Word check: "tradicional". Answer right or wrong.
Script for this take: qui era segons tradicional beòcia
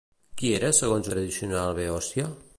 right